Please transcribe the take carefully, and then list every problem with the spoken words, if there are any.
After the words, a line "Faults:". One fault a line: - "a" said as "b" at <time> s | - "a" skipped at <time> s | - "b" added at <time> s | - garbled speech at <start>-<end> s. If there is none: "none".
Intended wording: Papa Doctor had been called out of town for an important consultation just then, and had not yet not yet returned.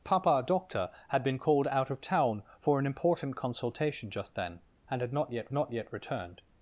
Papa Doctor had been called out of town for an important consultation just then, and had not yet not yet returned.
Faults:
none